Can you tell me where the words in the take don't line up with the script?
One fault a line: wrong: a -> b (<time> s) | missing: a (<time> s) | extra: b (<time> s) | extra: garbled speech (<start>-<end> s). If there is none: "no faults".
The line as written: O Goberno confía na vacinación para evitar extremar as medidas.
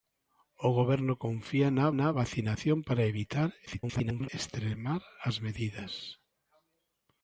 extra: na (2.0 s)
extra: garbled speech (3.7-4.3 s)